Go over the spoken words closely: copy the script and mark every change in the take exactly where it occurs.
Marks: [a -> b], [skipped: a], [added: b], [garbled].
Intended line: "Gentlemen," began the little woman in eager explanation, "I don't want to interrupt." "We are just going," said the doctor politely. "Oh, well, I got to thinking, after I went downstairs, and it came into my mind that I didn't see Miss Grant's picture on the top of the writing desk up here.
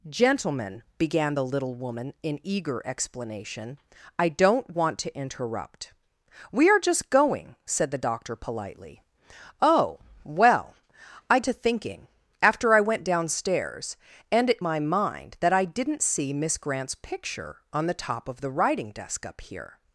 "Gentlemen," began the little woman in eager explanation, "I don't want to interrupt." "We are just going," said the doctor politely. "Oh, well, I [skipped: got] to thinking, after I went downstairs, and it [skipped: came into] my mind that I didn't see Miss Grant's picture on the top of the writing desk up here.